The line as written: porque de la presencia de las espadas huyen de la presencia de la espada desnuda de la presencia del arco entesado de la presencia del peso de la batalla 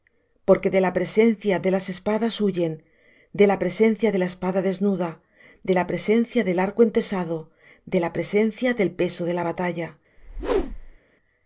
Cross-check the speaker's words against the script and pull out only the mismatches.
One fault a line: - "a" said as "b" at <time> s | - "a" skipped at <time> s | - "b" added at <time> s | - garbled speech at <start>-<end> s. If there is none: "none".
none